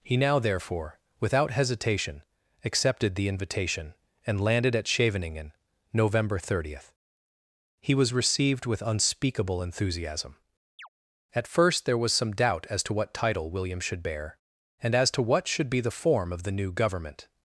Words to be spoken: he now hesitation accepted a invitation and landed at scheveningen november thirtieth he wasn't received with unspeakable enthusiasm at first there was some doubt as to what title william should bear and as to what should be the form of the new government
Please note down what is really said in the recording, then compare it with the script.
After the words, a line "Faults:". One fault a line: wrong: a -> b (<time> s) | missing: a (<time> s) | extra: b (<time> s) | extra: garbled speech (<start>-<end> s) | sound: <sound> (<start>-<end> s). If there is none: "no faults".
he now therefore without hesitation accepted the invitation and landed at scheveningen november thirtieth he was received with unspeakable enthusiasm at first there was some doubt as to what title william should bear and as to what should be the form of the new government
Faults:
extra: therefore without (0.4 s)
wrong: a -> the (3.1 s)
wrong: wasn't -> was (8.0 s)
sound: chirp (10.8-10.9 s)